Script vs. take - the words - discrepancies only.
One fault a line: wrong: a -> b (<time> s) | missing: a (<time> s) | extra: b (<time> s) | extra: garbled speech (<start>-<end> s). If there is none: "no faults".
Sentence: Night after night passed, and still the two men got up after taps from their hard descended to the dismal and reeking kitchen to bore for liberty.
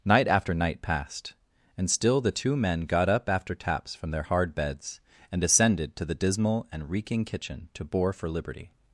extra: beds and (4.6 s)